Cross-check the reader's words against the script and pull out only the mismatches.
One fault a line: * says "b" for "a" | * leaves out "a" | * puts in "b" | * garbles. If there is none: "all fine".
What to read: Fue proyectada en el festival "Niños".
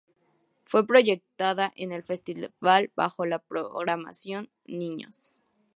* puts in "bajo la programación"